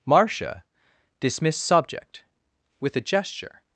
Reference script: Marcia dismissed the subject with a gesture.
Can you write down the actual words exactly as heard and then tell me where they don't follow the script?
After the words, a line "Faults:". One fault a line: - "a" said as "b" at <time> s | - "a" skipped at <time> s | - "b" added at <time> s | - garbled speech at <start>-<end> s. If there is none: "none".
Marcia dismissed subject with a gesture.
Faults:
- "the" skipped at 1.6 s